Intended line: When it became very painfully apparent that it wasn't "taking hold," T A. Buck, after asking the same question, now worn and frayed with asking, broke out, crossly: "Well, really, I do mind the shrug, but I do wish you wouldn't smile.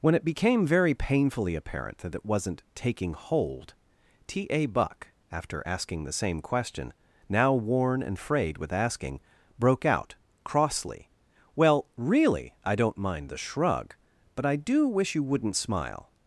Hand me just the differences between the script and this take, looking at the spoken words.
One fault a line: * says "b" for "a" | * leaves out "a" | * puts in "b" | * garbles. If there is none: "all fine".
* says "don't" for "do"